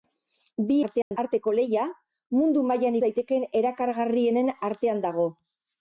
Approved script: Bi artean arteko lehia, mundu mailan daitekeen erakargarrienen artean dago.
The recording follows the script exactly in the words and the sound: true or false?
false